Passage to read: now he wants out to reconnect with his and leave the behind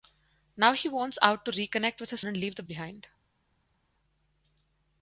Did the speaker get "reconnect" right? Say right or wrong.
right